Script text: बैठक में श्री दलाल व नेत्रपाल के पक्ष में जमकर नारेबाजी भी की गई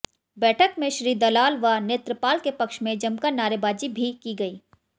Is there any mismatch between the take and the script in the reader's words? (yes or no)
no